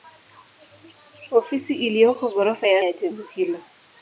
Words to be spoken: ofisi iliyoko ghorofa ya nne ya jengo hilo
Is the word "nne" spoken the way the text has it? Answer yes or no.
no